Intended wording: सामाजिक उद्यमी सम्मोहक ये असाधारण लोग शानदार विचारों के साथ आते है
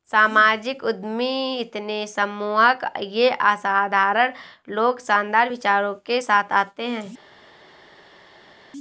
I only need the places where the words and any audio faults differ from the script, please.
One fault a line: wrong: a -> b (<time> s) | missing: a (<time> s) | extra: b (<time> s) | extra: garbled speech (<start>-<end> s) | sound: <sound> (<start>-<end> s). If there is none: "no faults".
extra: इतने (1.6 s)